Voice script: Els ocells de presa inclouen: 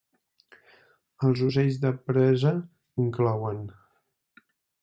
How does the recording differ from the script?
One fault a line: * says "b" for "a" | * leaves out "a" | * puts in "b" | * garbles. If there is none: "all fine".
all fine